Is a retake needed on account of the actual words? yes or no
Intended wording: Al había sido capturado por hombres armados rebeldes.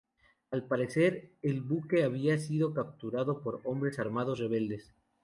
yes